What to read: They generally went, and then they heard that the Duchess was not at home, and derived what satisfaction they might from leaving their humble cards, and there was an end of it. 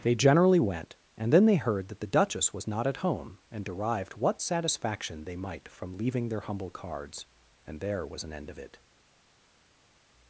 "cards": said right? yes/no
yes